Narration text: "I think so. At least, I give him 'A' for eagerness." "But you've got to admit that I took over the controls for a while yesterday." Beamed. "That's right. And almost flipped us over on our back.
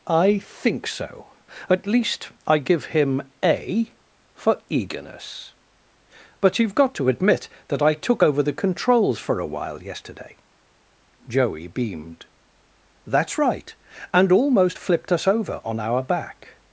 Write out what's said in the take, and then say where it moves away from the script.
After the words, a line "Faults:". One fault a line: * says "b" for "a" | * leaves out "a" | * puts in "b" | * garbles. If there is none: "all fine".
"I think so. At least, I give him 'A' for eagerness." "But you've got to admit that I took over the controls for a while yesterday." Joey beamed. "That's right. And almost flipped us over on our back.
Faults:
* puts in "Joey"